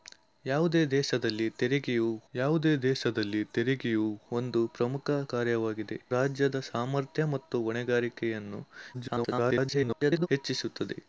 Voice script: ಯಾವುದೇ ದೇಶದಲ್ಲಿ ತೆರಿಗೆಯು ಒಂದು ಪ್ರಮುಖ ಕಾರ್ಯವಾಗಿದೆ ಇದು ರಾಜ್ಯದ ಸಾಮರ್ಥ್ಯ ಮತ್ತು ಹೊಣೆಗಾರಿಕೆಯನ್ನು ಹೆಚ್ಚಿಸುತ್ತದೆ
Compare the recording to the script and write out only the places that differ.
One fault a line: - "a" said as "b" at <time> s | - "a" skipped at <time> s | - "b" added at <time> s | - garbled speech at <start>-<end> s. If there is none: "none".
- "ಯಾವುದೇ ದೇಶದಲ್ಲಿ ತೆರಿಗೆಯು" added at 2.3 s
- "ಇದು" skipped at 6.0 s
- garbled speech at 8.9-10.3 s